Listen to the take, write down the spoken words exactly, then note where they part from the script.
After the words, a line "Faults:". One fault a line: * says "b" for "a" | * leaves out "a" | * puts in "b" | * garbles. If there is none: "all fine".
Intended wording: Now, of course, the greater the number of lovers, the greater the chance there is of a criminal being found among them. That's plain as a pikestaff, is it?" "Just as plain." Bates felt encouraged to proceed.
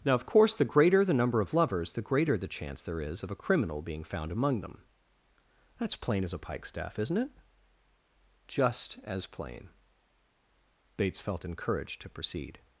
Now, of course, the greater the number of lovers, the greater the chance there is of a criminal being found among them. That's plain as a pikestaff, isn't it?" "Just as plain." Bates felt encouraged to proceed.
Faults:
* says "isn't" for "is"